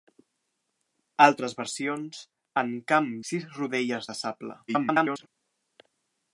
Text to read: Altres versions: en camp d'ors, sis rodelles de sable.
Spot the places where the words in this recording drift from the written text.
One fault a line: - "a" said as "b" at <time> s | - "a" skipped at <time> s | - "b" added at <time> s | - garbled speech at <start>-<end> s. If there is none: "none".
- "d'ors" skipped at 3.1 s
- garbled speech at 4.7-5.3 s